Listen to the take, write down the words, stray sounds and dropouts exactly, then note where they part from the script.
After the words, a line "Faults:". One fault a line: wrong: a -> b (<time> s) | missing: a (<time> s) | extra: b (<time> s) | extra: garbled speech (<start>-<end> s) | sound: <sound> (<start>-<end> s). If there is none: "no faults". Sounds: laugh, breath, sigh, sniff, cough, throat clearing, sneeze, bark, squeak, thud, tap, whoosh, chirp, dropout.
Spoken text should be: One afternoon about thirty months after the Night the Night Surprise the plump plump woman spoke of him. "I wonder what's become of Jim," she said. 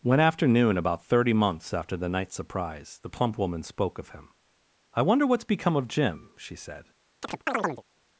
One afternoon about thirty months after the Night Surprise the plump woman spoke of him. "I wonder what's become of Jim," she said.
Faults:
missing: the Night (2.3 s)
missing: plump (3.4 s)
sound: chirp (7.2-7.8 s)